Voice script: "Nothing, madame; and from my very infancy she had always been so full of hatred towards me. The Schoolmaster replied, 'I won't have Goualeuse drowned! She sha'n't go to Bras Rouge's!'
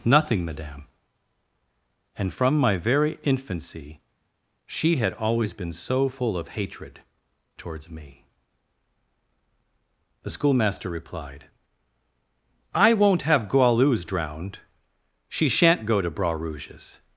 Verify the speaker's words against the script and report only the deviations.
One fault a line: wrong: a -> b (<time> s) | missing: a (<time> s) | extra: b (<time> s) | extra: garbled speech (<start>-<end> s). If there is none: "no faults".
no faults